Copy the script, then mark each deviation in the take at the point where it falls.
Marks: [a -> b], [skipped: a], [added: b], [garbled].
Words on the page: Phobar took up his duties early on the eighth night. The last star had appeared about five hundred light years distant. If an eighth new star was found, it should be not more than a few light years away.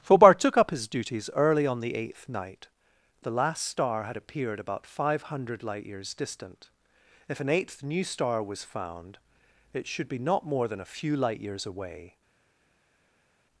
Phobar took up his duties early on the eighth night. The last star had appeared about five hundred light years distant. If an eighth new star was found, it should be not more than a few light years away.